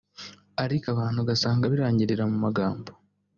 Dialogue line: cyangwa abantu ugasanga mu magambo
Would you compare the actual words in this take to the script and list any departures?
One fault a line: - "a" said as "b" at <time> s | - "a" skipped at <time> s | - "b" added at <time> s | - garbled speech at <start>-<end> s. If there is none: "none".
- "cyangwa" said as "ariko" at 0.6 s
- "birangirira" added at 1.7 s